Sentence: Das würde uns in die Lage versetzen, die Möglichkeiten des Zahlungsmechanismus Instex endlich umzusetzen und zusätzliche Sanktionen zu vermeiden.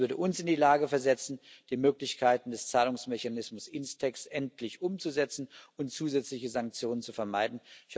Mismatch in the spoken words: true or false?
false